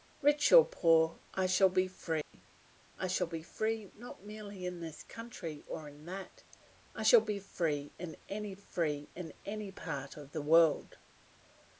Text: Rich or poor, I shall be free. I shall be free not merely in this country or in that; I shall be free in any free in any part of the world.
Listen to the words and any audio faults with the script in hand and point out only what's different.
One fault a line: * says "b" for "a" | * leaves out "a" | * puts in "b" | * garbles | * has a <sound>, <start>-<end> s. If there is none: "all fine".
* has a dropout, 2.2-2.3 s